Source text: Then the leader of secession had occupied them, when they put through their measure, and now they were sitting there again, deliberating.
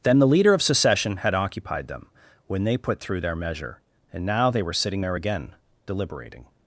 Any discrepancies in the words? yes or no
no